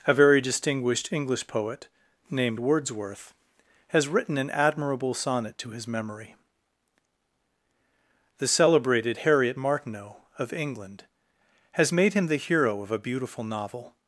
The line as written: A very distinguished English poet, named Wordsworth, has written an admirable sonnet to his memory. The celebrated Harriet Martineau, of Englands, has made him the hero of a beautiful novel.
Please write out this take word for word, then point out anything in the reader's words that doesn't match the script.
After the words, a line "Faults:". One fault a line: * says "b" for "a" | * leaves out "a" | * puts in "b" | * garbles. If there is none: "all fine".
A very distinguished English poet, named Wordsworth, has written an admirable sonnet to his memory. The celebrated Harriet Martineau, of England, has made him the hero of a beautiful novel.
Faults:
* says "England" for "Englands"